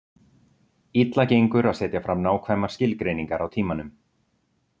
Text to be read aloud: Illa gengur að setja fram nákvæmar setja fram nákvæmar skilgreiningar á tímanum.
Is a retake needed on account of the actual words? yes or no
yes